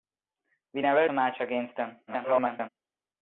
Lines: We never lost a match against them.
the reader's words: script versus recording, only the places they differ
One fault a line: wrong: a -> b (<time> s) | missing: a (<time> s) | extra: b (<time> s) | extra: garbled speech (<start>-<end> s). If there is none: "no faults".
missing: lost (1.1 s)
extra: garbled speech (2.1-2.7 s)